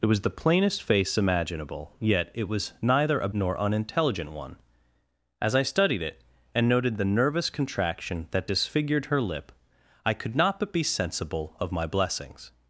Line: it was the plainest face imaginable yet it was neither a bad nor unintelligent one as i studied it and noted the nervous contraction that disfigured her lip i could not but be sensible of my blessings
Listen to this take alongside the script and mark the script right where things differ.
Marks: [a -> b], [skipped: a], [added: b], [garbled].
it was the plainest face imaginable yet it was neither a [skipped: bad] nor unintelligent one as i studied it and noted the nervous contraction that disfigured her lip i could not but be sensible of my blessings